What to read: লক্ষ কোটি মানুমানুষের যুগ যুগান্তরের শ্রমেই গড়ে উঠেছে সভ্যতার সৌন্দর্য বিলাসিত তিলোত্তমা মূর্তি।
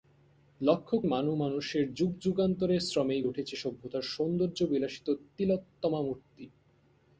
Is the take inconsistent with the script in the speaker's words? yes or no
yes